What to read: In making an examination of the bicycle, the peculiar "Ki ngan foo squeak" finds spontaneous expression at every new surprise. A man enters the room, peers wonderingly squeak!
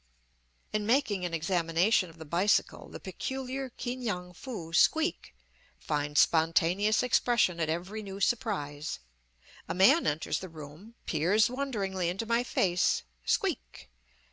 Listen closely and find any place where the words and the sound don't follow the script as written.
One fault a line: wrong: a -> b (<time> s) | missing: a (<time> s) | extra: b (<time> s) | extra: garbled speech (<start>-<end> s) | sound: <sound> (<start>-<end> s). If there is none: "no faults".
extra: into my face (12.1 s)